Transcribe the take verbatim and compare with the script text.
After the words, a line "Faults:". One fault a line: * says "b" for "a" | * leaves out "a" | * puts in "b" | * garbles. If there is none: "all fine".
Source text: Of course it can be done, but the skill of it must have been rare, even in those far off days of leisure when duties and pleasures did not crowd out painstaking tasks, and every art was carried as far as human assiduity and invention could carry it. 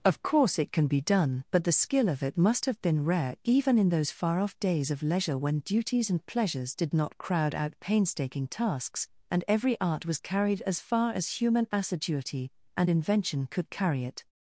Of course it can be done, but the skill of it must have been rare, even in those far off days of leisure when duties and pleasures did not crowd out painstaking tasks, and every art was carried as far as human assiduity and invention could carry it.
Faults:
all fine